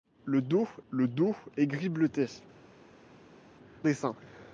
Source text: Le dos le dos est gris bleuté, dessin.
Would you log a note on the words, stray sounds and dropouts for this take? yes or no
no